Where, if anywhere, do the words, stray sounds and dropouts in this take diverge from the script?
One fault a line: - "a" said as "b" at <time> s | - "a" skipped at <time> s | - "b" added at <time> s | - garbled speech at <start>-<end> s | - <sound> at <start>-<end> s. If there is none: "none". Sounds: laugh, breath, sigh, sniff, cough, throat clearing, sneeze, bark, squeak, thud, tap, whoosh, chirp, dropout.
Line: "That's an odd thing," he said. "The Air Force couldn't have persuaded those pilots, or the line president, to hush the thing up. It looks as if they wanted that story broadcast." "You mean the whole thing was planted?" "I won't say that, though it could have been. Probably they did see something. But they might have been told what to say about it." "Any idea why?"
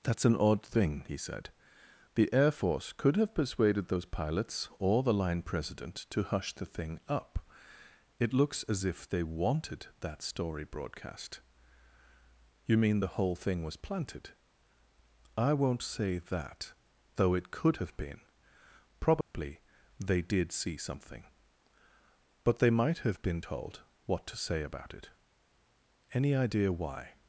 - "couldn't" said as "could" at 2.9 s
- dropout at 19.2-19.3 s